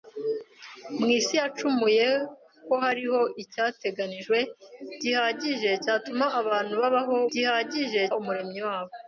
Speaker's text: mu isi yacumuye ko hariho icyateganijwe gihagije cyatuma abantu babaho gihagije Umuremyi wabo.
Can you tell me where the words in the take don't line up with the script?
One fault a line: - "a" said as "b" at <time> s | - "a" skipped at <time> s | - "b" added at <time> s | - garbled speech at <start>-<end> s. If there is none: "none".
none